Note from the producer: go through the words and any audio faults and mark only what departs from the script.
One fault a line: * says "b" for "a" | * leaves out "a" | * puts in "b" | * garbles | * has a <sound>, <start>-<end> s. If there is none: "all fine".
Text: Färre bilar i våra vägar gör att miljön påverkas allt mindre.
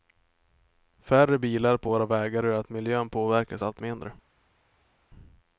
* says "på" for "i"